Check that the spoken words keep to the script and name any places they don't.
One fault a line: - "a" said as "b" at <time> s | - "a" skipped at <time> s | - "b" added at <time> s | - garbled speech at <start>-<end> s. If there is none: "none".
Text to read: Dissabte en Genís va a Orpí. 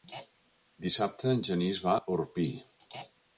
none